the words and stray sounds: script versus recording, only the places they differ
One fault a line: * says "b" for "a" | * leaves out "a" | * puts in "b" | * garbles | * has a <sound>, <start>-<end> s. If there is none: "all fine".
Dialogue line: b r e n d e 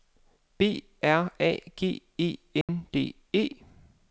* puts in "a g"
* has a dropout, 2.6-2.7 s